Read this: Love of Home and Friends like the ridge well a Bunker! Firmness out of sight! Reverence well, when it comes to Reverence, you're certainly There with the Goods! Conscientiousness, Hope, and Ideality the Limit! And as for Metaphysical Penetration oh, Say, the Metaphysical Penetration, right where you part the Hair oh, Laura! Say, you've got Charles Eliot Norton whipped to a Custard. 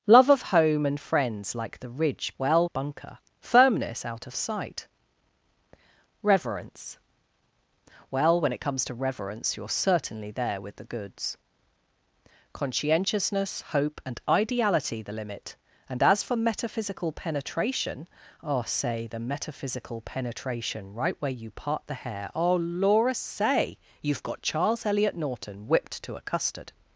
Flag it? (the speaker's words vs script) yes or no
no